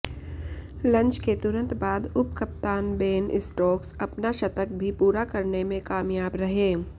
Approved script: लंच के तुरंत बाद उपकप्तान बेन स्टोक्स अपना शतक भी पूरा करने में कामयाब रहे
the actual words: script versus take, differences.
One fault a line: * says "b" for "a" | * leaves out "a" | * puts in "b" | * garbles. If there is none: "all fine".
all fine